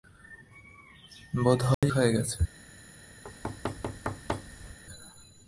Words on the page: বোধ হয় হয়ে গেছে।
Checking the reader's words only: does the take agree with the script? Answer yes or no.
yes